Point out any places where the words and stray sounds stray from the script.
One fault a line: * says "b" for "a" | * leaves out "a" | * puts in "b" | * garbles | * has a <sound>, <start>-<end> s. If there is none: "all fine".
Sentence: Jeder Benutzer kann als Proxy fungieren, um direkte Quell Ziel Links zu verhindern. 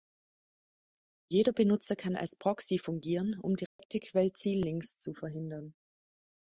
* has a dropout, 3.7-3.8 s